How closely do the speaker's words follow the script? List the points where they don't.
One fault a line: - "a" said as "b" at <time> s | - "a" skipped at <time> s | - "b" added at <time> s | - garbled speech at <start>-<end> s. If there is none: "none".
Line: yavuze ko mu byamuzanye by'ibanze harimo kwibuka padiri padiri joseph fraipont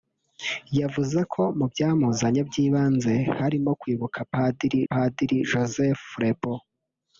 none